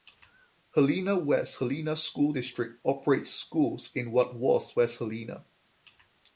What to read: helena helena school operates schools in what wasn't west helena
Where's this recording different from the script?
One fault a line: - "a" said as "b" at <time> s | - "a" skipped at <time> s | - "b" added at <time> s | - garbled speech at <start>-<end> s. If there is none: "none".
- "west" added at 1.1 s
- "district" added at 2.3 s
- "wasn't" said as "was" at 4.3 s